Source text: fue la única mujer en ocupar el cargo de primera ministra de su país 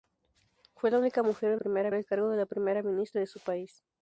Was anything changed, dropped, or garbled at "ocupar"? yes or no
yes